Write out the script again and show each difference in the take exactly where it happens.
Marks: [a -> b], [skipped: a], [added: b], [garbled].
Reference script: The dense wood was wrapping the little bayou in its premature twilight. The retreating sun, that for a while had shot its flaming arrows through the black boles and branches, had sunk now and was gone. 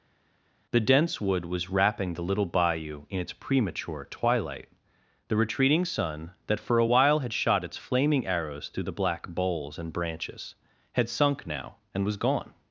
The dense wood was wrapping the little bayou in its premature twilight. The retreating sun, that for a while had shot its flaming arrows through the black boles and branches, had sunk now and was gone.